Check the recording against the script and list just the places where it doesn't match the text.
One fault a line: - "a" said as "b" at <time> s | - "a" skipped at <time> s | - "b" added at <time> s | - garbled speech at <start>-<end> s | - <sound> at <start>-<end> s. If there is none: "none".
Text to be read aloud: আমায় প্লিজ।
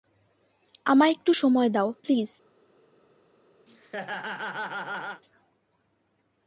- "একটু সময় দাও" added at 1.1 s
- laugh at 3.7-5.2 s